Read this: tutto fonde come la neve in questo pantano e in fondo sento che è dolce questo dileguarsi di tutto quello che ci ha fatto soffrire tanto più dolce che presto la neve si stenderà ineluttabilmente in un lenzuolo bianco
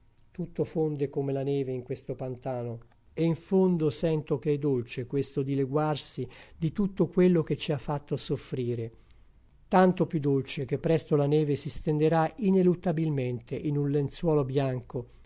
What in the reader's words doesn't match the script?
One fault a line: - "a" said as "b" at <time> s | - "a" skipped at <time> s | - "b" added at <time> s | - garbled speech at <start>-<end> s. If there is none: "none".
none